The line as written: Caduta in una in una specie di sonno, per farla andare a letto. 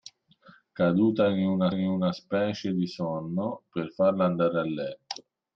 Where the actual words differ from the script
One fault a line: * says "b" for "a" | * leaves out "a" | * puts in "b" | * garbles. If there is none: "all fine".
all fine